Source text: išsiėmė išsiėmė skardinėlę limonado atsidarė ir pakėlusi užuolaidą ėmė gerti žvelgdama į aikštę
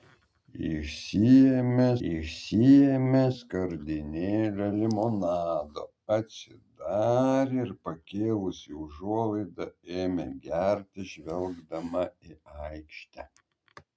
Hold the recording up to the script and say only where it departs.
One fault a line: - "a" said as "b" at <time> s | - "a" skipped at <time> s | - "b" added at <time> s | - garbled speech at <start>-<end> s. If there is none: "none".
none